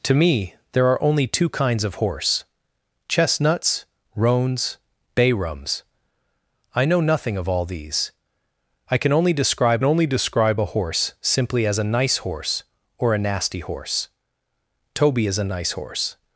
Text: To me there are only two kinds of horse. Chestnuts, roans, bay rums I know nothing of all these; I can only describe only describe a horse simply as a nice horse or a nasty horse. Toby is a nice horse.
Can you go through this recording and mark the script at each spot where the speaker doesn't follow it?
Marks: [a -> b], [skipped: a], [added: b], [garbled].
To me there are only two kinds of horse. Chestnuts, roans, bay rums I know nothing of all these; I can only describe only describe a horse simply as a nice horse or a nasty horse. Toby is a nice horse.